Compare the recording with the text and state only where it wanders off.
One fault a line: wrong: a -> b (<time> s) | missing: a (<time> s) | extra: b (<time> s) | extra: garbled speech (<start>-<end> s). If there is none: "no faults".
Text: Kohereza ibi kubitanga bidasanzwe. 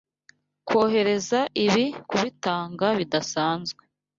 no faults